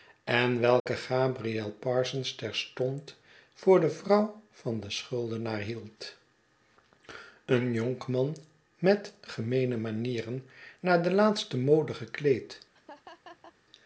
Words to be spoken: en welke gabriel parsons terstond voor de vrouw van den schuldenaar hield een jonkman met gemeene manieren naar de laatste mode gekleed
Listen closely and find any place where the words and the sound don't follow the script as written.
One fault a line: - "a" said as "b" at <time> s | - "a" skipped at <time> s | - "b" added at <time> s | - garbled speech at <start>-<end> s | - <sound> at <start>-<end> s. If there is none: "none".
- dropout at 0.8-0.9 s
- laugh at 12.7-13.5 s